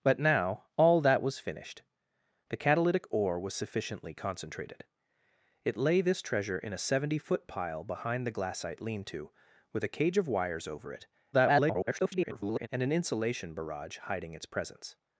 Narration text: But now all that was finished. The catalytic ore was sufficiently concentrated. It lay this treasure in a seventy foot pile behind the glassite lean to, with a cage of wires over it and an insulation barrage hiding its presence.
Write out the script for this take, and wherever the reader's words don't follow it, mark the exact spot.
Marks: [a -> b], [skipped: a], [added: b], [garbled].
But now all that was finished. The catalytic ore was sufficiently concentrated. It lay this treasure in a seventy foot pile behind the glassite lean to, with a cage of wires over it [garbled] and an insulation barrage hiding its presence.